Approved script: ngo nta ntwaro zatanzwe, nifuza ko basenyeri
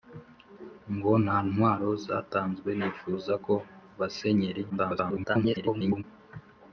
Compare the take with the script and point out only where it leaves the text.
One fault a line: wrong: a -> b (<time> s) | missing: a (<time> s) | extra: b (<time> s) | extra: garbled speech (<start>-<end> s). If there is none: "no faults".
extra: garbled speech (4.7-6.0 s)